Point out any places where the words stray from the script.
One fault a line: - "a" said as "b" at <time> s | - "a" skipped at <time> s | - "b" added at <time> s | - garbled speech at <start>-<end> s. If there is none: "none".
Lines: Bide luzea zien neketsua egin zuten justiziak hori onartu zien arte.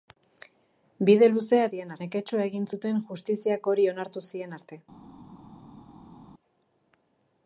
none